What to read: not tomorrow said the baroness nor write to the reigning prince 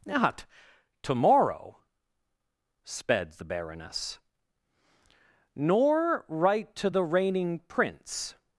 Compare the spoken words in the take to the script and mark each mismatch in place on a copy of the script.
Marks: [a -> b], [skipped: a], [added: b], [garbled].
not tomorrow [said -> sped] the baroness nor write to the reigning prince